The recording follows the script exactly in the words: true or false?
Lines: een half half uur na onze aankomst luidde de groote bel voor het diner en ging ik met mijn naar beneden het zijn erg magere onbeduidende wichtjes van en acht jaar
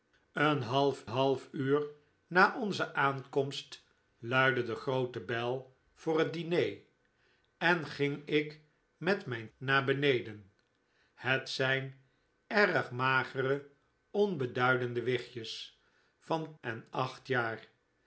true